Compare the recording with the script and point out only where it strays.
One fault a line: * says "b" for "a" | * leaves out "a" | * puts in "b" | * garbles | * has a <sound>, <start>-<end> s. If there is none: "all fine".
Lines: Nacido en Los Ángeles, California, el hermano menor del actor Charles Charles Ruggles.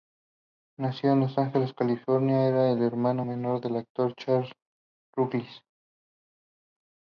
* puts in "era"
* leaves out "Charles"